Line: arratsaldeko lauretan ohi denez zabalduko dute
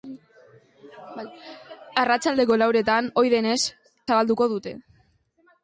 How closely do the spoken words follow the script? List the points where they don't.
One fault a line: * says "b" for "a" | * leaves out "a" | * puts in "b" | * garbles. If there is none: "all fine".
all fine